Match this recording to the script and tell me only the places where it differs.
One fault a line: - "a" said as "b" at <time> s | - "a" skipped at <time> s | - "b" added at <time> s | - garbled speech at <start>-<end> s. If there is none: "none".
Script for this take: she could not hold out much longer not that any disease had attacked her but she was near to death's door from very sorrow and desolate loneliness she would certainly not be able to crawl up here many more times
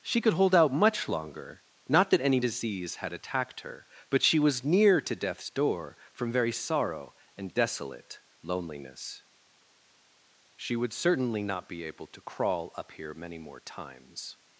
- "not" skipped at 0.3 s